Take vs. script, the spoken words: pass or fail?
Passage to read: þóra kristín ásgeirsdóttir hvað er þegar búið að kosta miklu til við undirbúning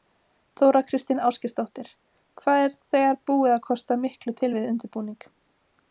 pass